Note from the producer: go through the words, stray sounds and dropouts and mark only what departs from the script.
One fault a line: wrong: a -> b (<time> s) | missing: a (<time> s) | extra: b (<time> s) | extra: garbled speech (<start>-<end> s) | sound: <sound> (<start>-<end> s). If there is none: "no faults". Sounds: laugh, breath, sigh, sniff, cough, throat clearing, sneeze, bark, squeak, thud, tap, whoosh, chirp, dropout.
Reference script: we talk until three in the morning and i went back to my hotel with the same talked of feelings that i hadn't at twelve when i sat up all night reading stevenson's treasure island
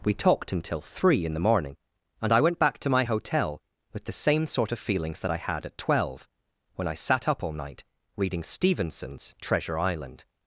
wrong: talk -> talked (0.1 s)
wrong: talked -> sort (4.5 s)
wrong: hadn't -> had (5.4 s)